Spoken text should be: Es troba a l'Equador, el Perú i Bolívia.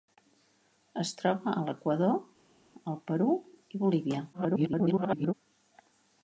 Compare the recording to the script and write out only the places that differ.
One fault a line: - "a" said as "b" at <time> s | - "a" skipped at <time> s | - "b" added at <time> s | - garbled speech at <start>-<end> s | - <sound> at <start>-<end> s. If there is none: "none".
- garbled speech at 4.3-5.3 s